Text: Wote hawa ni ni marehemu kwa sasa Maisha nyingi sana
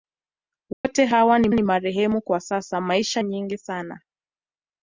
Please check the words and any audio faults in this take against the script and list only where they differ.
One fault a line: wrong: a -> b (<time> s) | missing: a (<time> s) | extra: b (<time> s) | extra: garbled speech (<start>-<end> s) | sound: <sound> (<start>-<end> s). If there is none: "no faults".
sound: dropout (0.7-0.8 s)